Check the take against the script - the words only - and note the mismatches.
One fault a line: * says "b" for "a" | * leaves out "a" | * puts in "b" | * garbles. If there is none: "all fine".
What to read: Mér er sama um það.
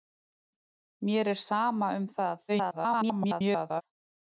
* garbles